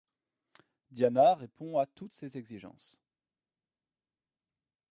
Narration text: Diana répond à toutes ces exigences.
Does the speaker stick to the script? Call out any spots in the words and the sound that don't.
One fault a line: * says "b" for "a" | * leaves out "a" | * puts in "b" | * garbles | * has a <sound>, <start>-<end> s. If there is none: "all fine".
all fine